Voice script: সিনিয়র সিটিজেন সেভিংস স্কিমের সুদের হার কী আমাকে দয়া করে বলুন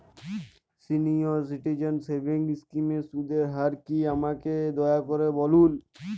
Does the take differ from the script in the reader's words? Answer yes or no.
no